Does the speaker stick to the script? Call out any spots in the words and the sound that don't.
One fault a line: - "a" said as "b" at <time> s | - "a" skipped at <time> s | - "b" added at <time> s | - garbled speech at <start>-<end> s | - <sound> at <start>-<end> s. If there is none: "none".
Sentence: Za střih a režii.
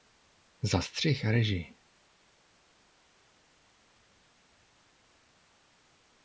none